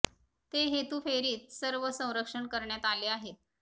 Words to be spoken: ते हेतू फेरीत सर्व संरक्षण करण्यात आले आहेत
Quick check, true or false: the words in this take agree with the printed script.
true